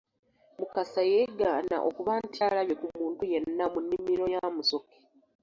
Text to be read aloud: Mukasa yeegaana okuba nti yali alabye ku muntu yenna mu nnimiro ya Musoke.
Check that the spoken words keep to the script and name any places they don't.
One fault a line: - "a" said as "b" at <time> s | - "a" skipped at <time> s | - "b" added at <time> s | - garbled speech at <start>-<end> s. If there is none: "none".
- "yali" skipped at 2.4 s